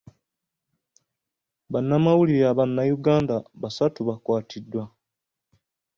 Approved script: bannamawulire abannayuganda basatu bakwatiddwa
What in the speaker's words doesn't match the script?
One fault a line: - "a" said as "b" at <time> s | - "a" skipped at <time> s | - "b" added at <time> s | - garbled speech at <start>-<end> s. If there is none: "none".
none